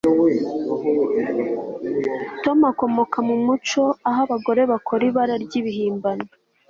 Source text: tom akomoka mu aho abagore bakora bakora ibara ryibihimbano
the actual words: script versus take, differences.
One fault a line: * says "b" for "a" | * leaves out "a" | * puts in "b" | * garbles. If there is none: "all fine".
* puts in "muco"
* leaves out "bakora"